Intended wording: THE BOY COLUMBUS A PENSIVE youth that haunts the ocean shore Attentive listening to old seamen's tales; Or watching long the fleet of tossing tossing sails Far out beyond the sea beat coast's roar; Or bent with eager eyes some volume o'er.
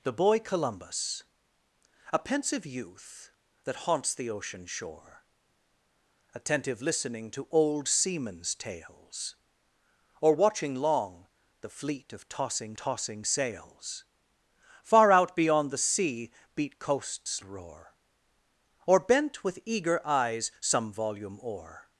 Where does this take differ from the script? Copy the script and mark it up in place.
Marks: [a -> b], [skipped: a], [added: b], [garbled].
THE BOY COLUMBUS A PENSIVE youth that haunts the ocean shore Attentive listening to old seamen's tales; Or watching long the fleet of tossing tossing sails Far out beyond the sea beat coast's roar; Or bent with eager eyes some volume o'er.